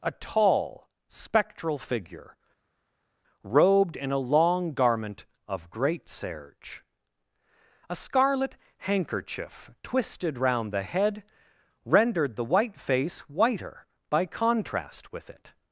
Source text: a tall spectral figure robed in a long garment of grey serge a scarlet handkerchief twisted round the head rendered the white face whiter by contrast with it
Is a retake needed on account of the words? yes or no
yes